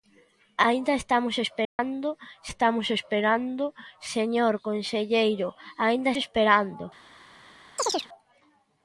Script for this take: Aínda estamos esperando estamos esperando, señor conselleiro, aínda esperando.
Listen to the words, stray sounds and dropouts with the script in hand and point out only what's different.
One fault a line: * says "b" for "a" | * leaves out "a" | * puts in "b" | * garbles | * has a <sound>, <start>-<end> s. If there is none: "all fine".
* has a dropout, 1.6-1.8 s
* has a chirp, 7.8-8.1 s